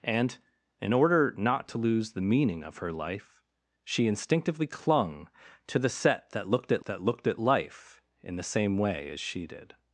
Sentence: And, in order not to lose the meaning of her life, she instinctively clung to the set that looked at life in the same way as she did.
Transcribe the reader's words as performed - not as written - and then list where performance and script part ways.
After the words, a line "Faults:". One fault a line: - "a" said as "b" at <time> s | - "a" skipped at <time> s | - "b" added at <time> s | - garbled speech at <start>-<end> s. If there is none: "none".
And, in order not to lose the meaning of her life, she instinctively clung to the set that looked at that looked at life in the same way as she did.
Faults:
- "that looked at" added at 6.8 s